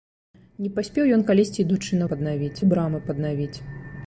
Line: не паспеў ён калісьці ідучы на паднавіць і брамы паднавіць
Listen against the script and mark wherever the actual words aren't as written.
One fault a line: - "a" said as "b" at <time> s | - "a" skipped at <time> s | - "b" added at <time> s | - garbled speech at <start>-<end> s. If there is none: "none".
none